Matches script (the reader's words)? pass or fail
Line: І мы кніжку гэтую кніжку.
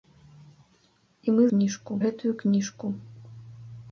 pass